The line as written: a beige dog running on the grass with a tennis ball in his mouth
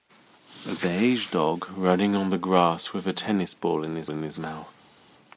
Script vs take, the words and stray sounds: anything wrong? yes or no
yes